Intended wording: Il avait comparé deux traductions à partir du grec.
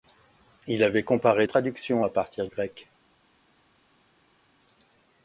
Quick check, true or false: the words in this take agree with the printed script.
false